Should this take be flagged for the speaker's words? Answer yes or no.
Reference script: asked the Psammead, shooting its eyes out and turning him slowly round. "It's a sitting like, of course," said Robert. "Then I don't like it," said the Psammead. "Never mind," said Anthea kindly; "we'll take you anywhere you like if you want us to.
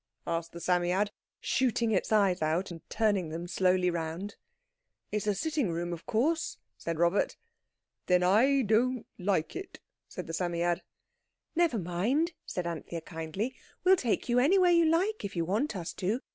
yes